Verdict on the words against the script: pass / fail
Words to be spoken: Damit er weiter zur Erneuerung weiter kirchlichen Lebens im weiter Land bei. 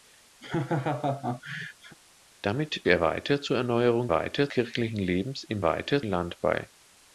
pass